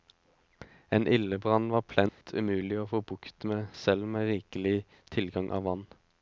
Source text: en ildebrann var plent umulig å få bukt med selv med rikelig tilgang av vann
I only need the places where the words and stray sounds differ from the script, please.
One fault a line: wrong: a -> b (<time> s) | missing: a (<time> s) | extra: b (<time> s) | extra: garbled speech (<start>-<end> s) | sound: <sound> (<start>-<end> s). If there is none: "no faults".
sound: dropout (2.1-2.2 s)